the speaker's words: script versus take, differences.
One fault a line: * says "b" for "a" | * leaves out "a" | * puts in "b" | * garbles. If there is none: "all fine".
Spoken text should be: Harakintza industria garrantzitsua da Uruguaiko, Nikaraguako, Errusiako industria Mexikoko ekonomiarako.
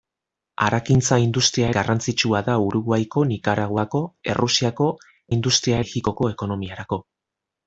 all fine